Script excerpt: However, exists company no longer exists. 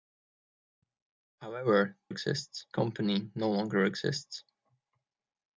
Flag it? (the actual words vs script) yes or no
no